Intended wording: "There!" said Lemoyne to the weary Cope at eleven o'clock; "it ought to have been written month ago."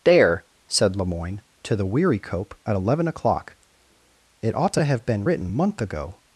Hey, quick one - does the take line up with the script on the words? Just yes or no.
yes